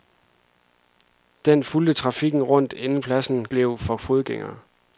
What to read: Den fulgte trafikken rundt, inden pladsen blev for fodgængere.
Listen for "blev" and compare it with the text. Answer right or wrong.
right